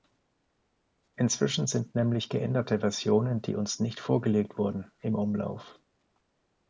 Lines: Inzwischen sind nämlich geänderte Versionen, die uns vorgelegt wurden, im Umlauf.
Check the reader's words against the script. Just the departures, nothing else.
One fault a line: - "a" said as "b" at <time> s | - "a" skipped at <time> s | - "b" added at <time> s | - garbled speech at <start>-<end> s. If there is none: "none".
- "nicht" added at 3.8 s